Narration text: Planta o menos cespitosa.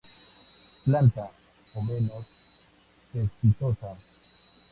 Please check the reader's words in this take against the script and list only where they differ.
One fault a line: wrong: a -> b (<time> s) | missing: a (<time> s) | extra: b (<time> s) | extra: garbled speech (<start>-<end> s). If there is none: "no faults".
no faults